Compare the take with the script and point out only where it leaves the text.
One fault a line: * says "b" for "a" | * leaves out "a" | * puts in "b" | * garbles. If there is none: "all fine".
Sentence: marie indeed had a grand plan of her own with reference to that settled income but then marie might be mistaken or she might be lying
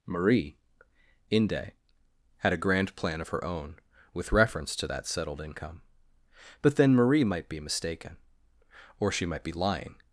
* says "inde" for "indeed"